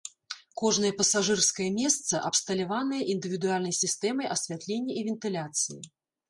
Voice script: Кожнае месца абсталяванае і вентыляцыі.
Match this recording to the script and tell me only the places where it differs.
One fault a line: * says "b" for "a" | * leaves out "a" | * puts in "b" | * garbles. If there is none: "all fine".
* puts in "пасажырскае"
* puts in "індывідуальнай сістэмай асвятлення"